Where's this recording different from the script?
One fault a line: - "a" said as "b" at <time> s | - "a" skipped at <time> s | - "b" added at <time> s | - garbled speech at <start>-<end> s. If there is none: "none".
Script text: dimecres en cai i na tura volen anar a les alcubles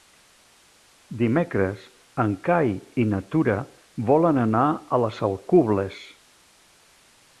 none